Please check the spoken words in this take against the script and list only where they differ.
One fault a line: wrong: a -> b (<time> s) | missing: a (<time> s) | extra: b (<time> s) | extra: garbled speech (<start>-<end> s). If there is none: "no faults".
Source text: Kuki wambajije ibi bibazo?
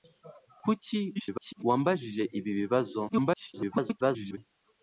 extra: garbled speech (1.1-1.6 s)
extra: garbled speech (3.1-4.4 s)